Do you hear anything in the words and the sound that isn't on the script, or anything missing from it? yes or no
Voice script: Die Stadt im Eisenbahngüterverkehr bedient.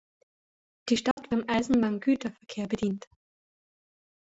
yes